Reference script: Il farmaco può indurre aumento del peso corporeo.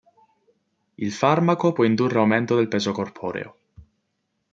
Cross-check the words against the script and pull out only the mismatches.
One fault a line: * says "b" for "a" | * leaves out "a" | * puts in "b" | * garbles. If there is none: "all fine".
all fine